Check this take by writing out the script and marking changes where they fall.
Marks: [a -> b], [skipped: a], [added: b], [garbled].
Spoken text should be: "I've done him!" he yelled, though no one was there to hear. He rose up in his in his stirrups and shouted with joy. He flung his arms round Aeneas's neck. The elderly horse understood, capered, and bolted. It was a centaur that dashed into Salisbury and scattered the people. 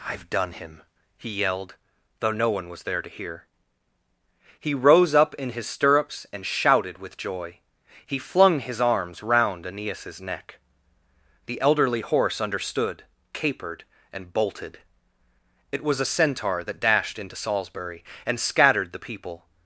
"I've done him!" he yelled, though no one was there to hear. He rose up in his [skipped: in his] stirrups and shouted with joy. He flung his arms round Aeneas's neck. The elderly horse understood, capered, and bolted. It was a centaur that dashed into Salisbury and scattered the people.